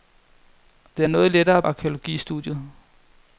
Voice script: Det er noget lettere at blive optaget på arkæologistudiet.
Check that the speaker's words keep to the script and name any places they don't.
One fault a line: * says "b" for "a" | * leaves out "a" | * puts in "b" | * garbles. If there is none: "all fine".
* leaves out "blive optaget på"